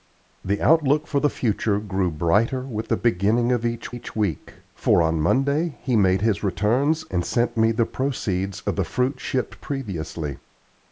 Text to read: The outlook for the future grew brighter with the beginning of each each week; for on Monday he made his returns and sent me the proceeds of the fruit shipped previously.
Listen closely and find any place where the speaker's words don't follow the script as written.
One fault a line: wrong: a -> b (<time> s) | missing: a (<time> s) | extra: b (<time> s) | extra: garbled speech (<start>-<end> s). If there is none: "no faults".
no faults